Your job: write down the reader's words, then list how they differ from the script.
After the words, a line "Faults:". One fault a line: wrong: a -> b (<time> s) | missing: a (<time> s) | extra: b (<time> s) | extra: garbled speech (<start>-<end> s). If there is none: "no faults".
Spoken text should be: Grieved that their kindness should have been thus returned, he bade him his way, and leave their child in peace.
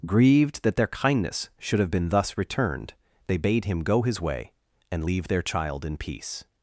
Grieved that their kindness should have been thus returned, they bade him go his way, and leave their child in peace.
Faults:
wrong: he -> they (3.3 s)
extra: go (3.8 s)